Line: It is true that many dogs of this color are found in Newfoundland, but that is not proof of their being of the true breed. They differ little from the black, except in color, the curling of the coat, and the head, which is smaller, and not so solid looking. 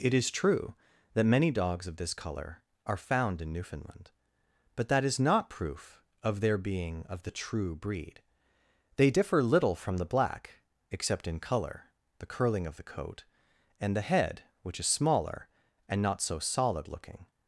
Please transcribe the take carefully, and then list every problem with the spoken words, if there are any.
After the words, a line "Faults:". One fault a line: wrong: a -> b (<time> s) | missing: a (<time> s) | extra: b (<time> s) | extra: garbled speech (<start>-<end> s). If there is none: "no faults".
It is true that many dogs of this color are found in Newfoundland, but that is not proof of their being of the true breed. They differ little from the black, except in color, the curling of the coat, and the head, which is smaller, and not so solid looking.
Faults:
no faults